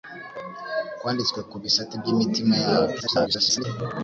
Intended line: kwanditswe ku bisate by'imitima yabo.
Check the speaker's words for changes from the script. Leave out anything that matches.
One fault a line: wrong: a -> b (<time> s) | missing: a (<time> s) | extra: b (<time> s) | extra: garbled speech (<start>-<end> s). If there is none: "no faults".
extra: garbled speech (3.0-3.6 s)